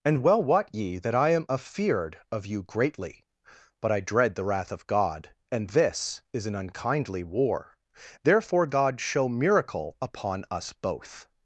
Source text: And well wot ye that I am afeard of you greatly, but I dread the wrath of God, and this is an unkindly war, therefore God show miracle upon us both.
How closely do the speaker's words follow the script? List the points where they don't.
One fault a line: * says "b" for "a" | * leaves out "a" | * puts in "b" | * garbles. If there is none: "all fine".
all fine